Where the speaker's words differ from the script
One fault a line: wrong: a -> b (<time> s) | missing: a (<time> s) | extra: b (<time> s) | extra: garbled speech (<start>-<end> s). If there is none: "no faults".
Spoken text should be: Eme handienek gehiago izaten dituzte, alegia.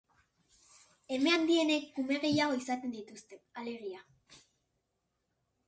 extra: kume (2.0 s)